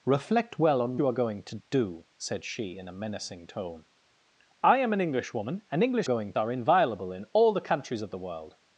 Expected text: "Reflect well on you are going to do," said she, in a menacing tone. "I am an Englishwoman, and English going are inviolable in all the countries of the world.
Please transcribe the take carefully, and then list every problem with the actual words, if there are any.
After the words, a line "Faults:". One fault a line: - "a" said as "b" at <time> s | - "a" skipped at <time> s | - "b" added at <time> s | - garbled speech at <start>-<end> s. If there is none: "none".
"Reflect well on you are going to do," said she, in a menacing tone. "I am an Englishwoman, and English going are inviolable in all the countries of the world.
Faults:
none